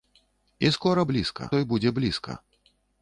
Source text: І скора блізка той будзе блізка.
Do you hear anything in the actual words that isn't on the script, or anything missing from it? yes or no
no